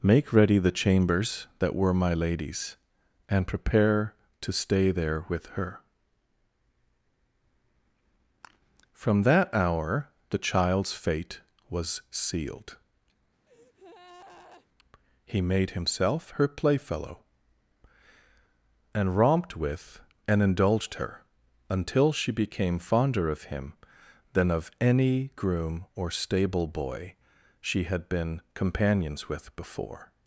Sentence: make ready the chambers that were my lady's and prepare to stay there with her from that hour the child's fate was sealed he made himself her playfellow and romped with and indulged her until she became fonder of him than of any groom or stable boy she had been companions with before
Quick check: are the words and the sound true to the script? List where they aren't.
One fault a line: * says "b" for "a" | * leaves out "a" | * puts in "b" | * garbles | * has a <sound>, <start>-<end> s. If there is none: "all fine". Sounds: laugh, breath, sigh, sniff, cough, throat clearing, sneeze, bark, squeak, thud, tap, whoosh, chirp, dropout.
* has a breath, 13.5-14.7 s